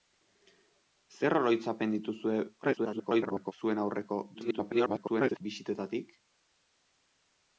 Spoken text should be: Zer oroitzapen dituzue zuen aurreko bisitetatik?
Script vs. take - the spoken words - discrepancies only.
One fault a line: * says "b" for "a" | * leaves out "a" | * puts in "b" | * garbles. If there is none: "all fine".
* garbles
* garbles